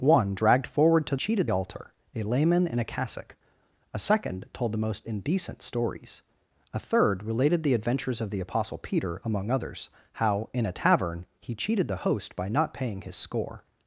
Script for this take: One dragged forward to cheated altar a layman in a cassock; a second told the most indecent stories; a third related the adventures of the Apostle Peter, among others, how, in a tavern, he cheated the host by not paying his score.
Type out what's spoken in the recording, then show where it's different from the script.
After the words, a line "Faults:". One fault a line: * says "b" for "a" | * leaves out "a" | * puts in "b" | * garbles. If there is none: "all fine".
One dragged forward to cheated altar a layman in a cassock; a second told the most indecent stories; a third related the adventures of the Apostle Peter, among others, how, in a tavern, he cheated the host by not paying his score.
Faults:
all fine